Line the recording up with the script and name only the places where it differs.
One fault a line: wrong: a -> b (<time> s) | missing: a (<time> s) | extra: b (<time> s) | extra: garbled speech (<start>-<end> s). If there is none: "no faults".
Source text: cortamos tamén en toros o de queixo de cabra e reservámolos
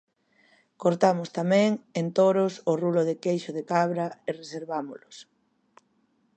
extra: rulo (2.8 s)